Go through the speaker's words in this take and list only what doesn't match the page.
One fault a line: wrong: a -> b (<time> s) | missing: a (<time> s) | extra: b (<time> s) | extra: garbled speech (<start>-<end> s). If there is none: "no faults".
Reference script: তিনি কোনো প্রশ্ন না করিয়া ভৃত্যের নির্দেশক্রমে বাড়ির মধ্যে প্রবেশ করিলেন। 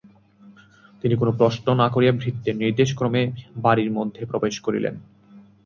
no faults